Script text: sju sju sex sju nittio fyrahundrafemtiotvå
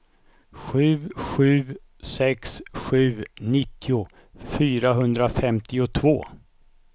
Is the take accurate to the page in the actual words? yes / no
yes